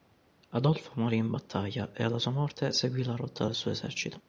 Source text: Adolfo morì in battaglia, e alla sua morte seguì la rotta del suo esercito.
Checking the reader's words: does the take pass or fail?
pass